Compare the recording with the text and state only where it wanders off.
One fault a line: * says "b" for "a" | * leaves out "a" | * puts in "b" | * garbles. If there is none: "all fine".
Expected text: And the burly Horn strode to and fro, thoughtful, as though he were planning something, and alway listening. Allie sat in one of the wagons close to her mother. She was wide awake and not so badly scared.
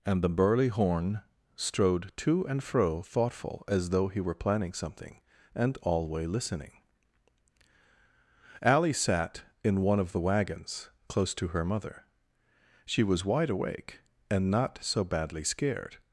all fine